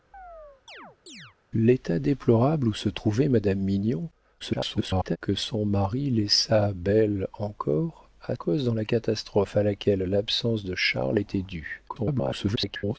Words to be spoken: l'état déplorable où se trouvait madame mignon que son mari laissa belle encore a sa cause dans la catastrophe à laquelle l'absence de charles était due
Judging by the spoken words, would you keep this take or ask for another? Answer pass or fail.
fail